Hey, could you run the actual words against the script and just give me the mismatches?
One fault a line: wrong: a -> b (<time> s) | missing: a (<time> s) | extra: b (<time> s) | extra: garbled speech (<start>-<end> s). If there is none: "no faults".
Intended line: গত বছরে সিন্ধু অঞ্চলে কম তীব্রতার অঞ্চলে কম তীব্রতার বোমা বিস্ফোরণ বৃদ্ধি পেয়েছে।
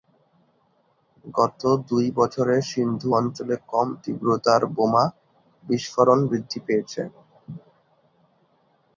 extra: দুই (1.9 s)
missing: অঞ্চলে কম তীব্রতার (4.6 s)